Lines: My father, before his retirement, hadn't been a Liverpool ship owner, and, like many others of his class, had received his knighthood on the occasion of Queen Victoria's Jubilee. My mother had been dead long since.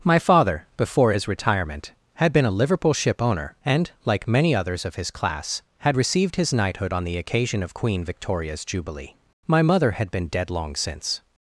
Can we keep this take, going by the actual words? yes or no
no